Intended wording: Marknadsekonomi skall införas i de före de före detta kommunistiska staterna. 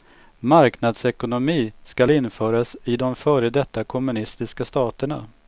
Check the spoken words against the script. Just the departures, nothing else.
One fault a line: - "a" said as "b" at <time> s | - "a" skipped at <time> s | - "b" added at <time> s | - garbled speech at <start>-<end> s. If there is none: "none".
- "de före" skipped at 3.5 s